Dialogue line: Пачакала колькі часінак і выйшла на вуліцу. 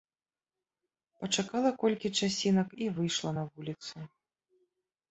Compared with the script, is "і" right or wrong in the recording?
right